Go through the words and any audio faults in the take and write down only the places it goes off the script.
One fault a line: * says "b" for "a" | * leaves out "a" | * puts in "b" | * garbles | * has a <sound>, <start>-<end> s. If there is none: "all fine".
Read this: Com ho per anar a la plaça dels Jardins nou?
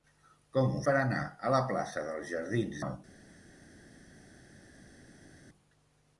all fine